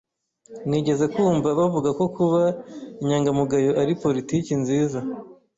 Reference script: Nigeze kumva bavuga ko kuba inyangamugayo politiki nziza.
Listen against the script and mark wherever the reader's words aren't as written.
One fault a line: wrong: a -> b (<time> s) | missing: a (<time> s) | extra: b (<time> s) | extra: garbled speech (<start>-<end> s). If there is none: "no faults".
extra: ari (3.8 s)